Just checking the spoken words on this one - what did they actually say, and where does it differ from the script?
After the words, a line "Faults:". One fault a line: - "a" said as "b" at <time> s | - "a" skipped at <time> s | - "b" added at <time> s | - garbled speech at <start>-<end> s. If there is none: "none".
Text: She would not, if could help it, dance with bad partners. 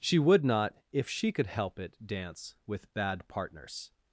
She would not, if she could help it, dance with bad partners.
Faults:
- "she" added at 1.1 s